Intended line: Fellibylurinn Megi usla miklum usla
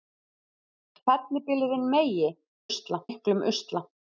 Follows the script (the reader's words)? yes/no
yes